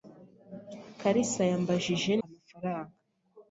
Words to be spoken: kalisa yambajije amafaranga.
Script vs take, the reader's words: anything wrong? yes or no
no